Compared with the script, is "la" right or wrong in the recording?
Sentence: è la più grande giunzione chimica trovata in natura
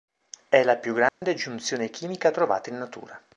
right